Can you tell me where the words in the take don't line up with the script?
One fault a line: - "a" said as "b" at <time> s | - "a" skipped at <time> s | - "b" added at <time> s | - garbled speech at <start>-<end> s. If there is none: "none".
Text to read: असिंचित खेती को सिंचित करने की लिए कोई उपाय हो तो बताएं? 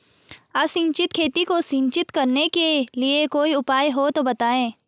- "की" said as "के" at 2.5 s